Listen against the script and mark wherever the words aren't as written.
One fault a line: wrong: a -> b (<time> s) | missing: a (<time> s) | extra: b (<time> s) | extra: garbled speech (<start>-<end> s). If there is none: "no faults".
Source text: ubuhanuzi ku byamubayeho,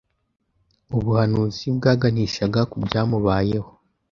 extra: bwaganishaga (1.8 s)